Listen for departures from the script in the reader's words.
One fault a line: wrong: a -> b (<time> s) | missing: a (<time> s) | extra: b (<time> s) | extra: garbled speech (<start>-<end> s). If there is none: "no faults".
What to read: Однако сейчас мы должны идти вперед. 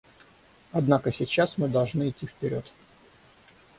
no faults